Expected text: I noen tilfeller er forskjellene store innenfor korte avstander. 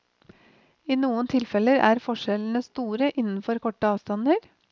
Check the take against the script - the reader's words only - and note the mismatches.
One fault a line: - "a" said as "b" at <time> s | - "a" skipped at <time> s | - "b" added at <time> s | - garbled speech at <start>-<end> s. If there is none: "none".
none